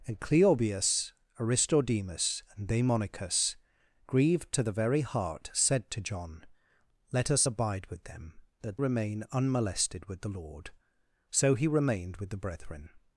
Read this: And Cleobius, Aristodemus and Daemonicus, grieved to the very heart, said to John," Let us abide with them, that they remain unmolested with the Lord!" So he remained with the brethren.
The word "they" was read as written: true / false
false